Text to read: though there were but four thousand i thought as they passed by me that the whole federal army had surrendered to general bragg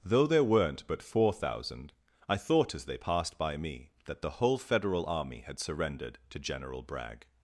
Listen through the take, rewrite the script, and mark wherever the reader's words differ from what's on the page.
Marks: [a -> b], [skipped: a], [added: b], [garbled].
though there [were -> weren't] but four thousand i thought as they passed by me that the whole federal army had surrendered to general bragg